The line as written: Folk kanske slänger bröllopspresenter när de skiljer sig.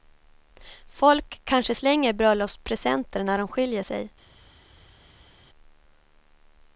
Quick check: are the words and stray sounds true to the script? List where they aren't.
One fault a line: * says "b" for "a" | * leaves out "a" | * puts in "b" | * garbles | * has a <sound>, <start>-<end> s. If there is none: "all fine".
all fine